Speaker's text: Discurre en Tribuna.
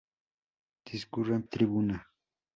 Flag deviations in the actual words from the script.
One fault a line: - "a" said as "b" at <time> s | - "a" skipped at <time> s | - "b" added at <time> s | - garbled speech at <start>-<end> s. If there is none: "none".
none